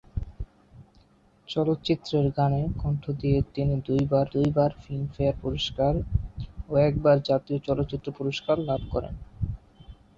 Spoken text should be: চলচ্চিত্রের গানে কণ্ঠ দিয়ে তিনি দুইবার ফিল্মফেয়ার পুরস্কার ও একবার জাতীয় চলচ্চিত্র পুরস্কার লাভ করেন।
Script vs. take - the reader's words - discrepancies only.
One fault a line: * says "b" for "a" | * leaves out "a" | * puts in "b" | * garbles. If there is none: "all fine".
* puts in "দুইবার"